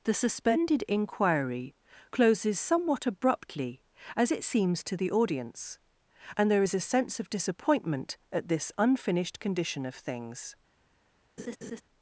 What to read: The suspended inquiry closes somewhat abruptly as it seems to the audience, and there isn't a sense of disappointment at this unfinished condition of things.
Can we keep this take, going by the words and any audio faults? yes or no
no